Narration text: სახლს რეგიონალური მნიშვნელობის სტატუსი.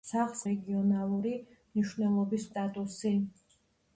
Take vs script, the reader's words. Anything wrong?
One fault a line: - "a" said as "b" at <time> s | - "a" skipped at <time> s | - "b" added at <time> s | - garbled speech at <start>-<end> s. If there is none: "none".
none